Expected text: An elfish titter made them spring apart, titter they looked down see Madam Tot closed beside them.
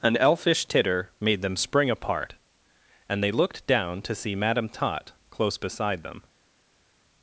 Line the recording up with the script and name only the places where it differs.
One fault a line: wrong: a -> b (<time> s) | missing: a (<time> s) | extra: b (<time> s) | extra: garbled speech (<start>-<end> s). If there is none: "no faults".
wrong: titter -> and (3.1 s)
extra: to (4.0 s)
wrong: closed -> close (5.3 s)